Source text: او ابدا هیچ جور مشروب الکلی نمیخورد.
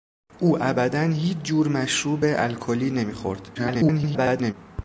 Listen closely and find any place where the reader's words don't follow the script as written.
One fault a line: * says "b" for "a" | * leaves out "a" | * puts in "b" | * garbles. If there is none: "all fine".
* garbles